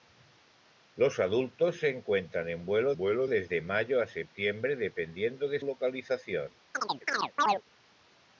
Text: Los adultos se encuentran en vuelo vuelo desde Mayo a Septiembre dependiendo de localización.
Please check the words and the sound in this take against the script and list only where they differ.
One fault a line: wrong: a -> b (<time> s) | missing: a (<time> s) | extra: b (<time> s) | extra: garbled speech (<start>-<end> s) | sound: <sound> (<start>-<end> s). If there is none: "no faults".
sound: chirp (6.7-7.6 s)